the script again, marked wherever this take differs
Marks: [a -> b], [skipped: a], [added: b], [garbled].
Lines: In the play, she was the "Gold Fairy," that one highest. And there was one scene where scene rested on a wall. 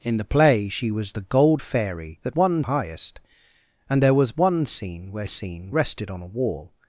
In the play, she was the "Gold Fairy," that one highest. And there was one scene where scene rested on a wall.